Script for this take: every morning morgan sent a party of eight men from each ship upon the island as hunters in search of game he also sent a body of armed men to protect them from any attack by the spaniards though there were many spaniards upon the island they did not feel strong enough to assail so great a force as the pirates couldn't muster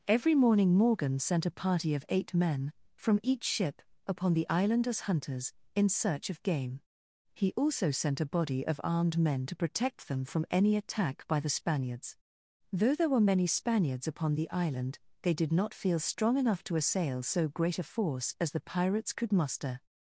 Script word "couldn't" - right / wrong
wrong